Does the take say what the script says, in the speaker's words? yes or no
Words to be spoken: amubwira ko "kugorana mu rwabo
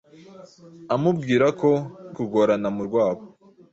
yes